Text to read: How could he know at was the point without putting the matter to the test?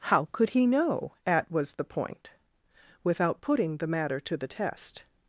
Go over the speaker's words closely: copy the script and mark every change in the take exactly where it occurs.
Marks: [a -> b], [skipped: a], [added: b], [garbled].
How could he know at was the point without putting the matter to the test?